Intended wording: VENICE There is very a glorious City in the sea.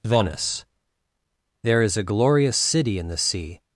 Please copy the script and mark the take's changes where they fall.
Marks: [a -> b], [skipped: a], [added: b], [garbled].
VENICE There is [skipped: very] a glorious City in the sea.